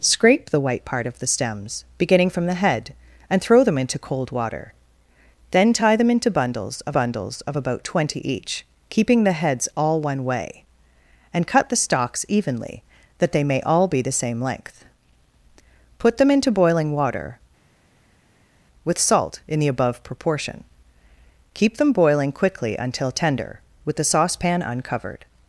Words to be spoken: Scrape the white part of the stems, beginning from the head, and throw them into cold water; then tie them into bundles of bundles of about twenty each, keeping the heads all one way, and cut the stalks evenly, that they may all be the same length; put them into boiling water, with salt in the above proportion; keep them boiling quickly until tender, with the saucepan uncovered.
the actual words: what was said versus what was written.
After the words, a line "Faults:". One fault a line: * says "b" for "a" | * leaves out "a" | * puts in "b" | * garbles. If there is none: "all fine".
Scrape the white part of the stems, beginning from the head, and throw them into cold water; then tie them into bundles of bundles of about twenty each, keeping the heads all one way, and cut the stalks evenly, that they may all be the same length; put them into boiling water, with salt in the above proportion; keep them boiling quickly until tender, with the saucepan uncovered.
Faults:
all fine